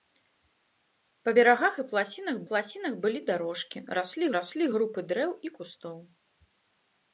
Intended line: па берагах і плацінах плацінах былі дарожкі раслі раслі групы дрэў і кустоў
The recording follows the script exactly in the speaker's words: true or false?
true